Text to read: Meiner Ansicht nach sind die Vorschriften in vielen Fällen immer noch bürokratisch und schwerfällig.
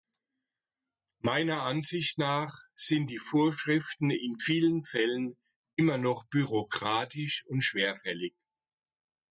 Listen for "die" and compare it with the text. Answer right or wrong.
right